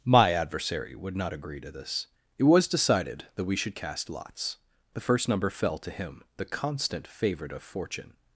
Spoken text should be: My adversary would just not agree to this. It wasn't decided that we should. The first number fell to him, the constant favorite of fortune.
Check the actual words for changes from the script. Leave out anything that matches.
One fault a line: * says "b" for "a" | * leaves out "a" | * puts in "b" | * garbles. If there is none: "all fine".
* leaves out "just"
* says "was" for "wasn't"
* puts in "cast lots"